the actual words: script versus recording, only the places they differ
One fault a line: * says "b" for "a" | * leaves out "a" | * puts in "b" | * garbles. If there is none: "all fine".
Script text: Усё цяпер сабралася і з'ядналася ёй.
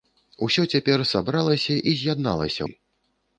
all fine